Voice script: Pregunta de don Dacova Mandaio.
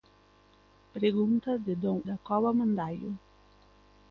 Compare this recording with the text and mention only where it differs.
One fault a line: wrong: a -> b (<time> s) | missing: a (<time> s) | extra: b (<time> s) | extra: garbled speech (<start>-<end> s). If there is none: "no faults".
no faults